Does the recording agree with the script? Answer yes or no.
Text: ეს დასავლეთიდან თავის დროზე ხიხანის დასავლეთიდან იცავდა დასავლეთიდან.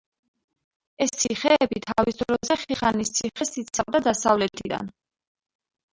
no